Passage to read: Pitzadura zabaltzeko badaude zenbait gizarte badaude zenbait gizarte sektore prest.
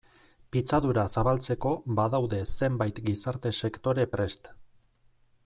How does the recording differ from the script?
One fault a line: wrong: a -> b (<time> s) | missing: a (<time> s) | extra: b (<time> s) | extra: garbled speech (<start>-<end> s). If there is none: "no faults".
missing: badaude zenbait gizarte (3.5 s)